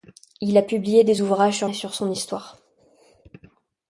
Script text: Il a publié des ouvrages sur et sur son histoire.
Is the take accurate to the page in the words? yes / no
yes